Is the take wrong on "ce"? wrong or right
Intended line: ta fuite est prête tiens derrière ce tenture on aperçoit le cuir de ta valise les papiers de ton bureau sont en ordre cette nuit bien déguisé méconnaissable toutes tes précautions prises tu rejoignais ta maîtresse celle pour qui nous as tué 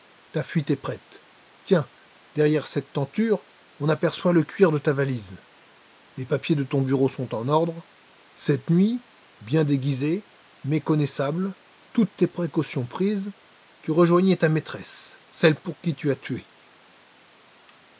wrong